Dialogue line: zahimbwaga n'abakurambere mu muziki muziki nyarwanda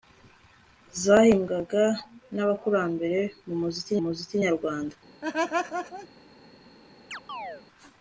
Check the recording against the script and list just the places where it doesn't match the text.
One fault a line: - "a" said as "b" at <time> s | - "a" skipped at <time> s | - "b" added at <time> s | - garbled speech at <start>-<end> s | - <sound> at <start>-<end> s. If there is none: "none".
- laugh at 5.2-6.1 s
- chirp at 7.1-7.6 s